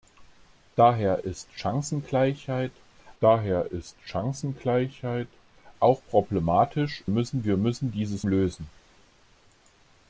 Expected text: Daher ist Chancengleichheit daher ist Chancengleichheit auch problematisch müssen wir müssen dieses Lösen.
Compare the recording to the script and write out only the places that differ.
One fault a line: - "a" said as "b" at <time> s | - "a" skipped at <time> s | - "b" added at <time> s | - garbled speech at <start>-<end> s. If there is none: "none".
none